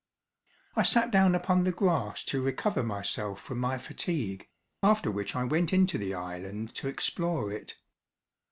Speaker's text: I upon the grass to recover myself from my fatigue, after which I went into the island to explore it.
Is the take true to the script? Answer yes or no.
no